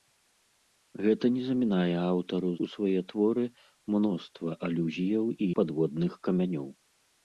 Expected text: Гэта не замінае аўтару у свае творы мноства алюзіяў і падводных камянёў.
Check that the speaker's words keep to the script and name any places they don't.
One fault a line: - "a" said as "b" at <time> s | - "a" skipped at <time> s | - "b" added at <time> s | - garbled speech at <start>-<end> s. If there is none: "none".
none